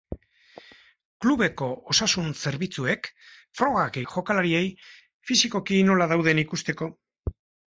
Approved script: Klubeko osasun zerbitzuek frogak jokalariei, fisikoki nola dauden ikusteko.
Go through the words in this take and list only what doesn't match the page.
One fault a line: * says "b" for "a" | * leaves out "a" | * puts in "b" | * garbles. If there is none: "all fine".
all fine